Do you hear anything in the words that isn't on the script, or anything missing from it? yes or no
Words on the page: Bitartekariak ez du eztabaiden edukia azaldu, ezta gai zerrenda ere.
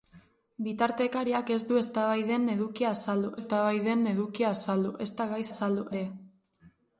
yes